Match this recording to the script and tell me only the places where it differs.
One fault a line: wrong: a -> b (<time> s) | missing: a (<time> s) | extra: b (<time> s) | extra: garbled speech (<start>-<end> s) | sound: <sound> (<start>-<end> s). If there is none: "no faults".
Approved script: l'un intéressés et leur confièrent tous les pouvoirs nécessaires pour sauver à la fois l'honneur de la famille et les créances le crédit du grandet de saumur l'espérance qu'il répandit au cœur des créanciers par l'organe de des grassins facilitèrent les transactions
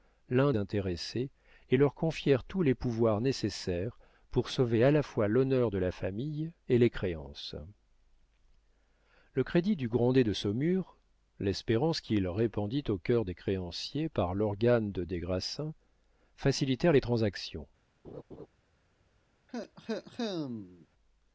sound: laugh (18.0-18.5 s)
sound: cough (19.5-20.9 s)